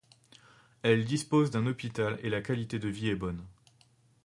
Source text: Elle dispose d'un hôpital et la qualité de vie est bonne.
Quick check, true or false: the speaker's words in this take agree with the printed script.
true